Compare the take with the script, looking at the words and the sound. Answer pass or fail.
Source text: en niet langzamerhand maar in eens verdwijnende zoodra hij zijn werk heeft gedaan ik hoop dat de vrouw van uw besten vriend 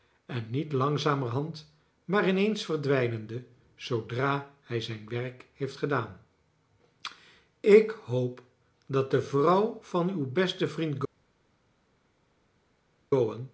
pass